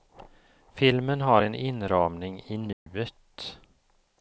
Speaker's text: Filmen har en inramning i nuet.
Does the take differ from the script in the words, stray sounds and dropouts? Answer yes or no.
yes